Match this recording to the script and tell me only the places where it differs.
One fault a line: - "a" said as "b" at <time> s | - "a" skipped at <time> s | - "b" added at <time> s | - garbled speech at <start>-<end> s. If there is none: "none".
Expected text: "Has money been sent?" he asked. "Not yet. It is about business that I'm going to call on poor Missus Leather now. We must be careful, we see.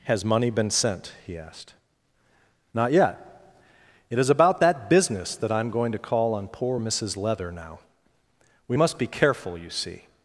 - "that" added at 4.6 s
- "we" said as "you" at 9.6 s